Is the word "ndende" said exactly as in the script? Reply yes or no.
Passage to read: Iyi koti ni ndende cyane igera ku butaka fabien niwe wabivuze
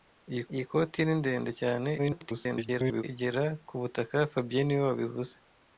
yes